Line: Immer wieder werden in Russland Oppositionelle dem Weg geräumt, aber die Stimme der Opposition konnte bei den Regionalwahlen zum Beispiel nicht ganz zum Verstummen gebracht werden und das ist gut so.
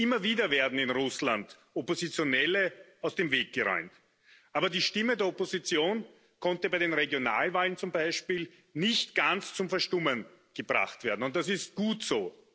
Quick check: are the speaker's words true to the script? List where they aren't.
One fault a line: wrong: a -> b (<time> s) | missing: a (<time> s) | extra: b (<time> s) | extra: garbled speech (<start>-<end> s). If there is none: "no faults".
extra: aus (3.0 s)